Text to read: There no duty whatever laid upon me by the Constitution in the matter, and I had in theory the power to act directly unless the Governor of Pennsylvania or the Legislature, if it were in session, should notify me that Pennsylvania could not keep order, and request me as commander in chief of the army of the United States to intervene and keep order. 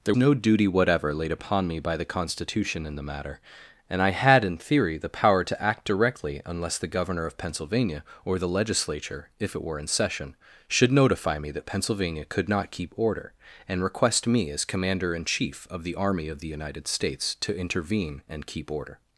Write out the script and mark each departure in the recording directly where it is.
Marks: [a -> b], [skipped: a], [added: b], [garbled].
There no duty whatever laid upon me by the Constitution in the matter, and I had in theory the power to act directly unless the Governor of Pennsylvania or the Legislature, if it were in session, should notify me that Pennsylvania could not keep order, and request me as commander in chief of the army of the United States to intervene and keep order.